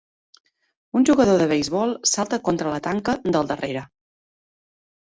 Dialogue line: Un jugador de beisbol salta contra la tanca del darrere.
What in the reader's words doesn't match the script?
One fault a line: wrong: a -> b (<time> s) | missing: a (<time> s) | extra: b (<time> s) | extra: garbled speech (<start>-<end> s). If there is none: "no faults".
no faults